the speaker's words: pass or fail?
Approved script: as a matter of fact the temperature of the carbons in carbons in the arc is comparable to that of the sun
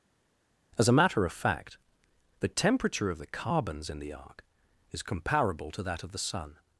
fail